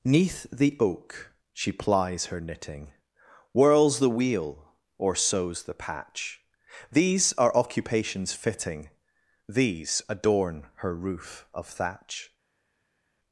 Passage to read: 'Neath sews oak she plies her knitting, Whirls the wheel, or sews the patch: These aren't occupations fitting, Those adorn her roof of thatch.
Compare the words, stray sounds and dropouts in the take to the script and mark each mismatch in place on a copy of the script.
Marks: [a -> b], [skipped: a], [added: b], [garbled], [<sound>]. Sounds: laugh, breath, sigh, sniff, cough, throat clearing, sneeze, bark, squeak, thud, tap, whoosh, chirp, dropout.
'Neath [sews -> the] oak she plies her knitting, Whirls the wheel, or sews the patch: These [aren't -> are] occupations fitting, [Those -> These] adorn her roof of thatch.